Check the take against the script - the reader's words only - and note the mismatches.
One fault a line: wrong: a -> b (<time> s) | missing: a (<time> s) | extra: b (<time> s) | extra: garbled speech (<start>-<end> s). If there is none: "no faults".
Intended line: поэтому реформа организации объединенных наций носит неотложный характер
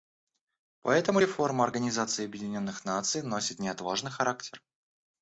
no faults